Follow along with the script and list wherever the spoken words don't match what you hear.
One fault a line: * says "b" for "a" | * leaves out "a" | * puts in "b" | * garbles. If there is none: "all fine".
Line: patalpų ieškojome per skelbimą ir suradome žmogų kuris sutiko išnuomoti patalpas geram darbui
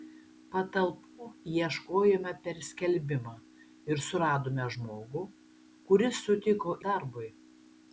* leaves out "išnuomoti patalpas geram"